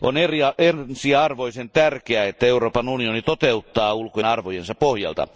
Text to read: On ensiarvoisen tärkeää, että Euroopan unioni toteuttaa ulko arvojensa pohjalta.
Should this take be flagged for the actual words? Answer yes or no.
no